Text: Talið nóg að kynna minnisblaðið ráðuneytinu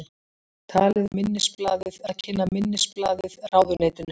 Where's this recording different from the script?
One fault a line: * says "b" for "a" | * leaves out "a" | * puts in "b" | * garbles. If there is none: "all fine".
* says "minnisblaðið" for "nóg"